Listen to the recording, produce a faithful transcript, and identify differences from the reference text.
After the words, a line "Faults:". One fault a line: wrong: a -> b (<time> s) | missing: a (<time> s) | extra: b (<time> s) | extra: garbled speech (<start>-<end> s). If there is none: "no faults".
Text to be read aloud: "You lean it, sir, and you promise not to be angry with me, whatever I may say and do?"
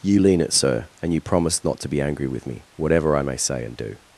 "You lean it, sir, and you promise not to be angry with me, whatever I may say and do?"
Faults:
no faults